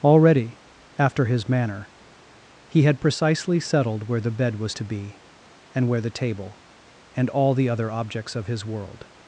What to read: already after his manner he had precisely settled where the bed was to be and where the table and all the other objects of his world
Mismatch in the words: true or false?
false